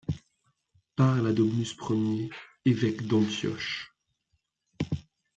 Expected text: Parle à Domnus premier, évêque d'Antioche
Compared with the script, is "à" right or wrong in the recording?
right